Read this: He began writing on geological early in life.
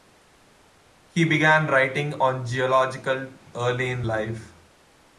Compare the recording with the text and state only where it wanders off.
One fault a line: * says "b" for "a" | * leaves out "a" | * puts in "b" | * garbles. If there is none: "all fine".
all fine